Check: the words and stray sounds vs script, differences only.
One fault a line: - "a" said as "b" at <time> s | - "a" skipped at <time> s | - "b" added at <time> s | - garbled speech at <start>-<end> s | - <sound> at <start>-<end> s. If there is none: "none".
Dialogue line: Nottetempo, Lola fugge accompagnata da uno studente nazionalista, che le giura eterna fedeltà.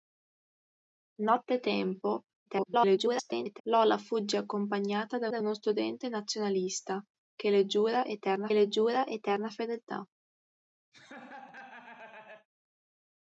- garbled speech at 2.5-3.6 s
- "da" added at 5.3 s
- "le giura eterna" added at 8.5 s
- laugh at 10.9-12.5 s